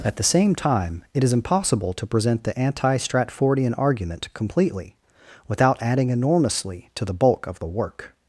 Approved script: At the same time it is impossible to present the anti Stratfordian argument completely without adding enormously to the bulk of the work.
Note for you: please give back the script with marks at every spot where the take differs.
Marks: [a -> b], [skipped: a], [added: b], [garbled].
At the same time it is impossible to present the anti Stratfordian argument completely without adding enormously to the bulk of the work.